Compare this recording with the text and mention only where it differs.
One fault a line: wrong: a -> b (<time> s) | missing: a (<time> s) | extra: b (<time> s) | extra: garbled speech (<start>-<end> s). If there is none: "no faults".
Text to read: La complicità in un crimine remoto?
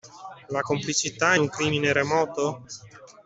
missing: in (1.3 s)